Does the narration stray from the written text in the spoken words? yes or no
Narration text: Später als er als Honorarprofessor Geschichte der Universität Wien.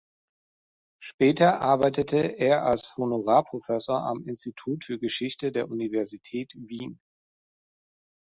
yes